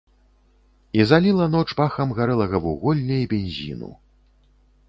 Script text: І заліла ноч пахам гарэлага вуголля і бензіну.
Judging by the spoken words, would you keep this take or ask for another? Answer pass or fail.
pass